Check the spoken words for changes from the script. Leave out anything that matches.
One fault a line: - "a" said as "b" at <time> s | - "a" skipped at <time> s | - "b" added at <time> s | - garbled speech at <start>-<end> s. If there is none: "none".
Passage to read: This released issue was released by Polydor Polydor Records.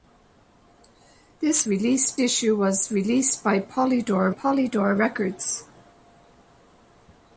none